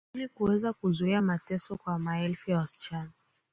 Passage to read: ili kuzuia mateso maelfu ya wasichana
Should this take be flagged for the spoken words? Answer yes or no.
yes